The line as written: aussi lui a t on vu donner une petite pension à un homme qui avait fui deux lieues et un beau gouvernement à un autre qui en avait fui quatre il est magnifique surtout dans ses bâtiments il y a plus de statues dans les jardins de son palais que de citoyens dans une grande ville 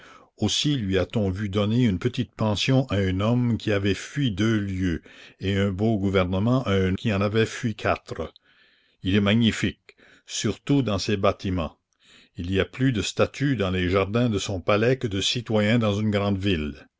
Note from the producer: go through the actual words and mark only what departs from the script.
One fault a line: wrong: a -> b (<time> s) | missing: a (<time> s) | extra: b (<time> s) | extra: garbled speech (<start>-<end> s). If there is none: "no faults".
missing: autre (7.0 s)